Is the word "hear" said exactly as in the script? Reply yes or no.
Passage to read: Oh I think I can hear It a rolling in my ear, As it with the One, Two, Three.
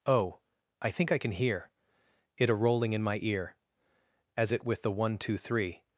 yes